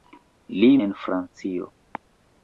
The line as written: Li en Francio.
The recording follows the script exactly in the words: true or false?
true